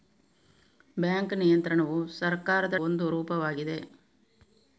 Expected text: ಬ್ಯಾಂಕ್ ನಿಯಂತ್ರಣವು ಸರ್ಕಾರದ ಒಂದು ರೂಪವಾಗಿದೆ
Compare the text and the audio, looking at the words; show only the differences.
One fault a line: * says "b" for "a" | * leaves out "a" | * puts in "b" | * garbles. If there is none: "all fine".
all fine